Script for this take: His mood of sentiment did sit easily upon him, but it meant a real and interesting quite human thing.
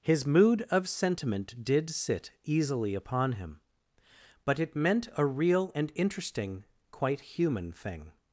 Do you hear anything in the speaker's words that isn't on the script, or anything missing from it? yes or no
no